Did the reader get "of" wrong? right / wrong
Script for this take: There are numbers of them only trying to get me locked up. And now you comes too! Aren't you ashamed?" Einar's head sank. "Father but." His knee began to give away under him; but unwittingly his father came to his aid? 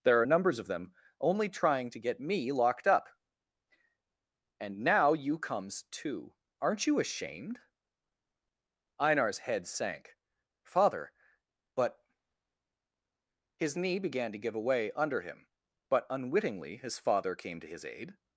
right